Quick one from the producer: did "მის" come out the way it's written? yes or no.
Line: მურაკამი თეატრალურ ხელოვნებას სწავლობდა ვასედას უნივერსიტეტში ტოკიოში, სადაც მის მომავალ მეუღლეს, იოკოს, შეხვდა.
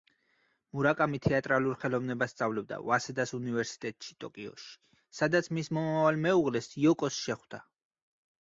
yes